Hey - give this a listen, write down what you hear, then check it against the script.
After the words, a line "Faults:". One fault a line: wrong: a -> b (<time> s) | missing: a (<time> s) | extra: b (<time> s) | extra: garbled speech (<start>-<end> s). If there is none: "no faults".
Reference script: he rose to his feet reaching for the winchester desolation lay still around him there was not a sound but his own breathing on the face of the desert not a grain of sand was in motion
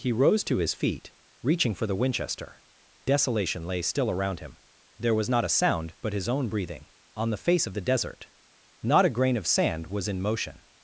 he rose to his feet reaching for the winchester desolation lay still around him there was not a sound but his own breathing on the face of the desert not a grain of sand was in motion
Faults:
no faults